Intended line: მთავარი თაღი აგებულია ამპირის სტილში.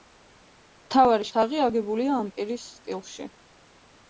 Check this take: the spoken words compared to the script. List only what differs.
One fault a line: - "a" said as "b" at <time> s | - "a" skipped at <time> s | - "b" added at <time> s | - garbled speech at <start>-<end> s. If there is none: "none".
none